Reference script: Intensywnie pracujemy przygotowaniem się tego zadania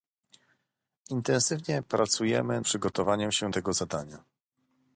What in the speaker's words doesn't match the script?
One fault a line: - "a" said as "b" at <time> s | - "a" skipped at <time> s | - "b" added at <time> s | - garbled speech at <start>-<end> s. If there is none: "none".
none